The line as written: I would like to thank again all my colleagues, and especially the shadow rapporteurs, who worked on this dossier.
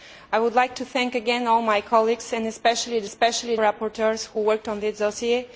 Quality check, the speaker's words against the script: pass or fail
fail